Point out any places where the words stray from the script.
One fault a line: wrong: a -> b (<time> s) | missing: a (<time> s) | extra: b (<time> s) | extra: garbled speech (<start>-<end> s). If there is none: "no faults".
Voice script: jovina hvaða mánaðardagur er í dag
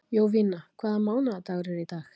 no faults